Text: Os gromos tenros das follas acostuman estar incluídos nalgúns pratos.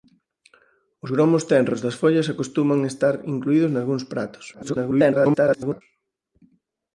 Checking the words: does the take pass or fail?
fail